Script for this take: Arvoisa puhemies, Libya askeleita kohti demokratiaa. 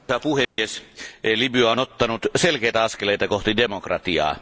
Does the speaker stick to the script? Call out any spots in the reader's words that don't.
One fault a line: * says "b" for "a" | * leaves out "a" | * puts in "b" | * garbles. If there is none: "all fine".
* puts in "on ottanut selkeitä"